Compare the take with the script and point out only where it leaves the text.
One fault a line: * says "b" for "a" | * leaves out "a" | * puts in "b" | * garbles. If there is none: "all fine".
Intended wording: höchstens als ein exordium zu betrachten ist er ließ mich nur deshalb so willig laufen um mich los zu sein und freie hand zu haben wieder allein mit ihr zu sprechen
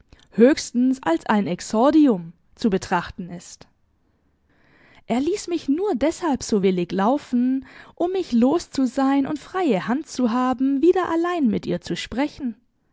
all fine